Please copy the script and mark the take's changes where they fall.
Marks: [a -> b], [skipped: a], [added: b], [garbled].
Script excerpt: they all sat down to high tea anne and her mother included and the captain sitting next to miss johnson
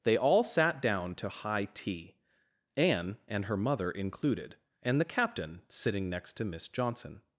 they all sat down to high tea anne and her mother included and the captain sitting next to miss johnson